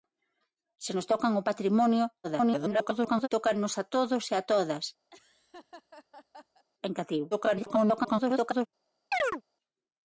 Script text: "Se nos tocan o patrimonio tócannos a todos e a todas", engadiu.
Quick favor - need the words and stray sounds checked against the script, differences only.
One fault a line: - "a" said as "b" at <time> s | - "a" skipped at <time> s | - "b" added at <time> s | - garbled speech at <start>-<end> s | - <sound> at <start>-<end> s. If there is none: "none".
- garbled speech at 2.2-3.3 s
- laugh at 5.1-6.6 s
- garbled speech at 7.3-8.7 s
- chirp at 9.1-9.4 s